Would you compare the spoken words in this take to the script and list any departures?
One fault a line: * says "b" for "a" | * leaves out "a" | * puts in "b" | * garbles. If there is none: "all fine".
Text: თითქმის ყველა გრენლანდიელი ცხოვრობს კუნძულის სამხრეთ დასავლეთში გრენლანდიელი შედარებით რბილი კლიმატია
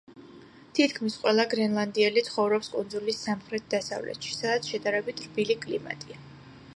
* says "სადაც" for "გრენლანდიელი"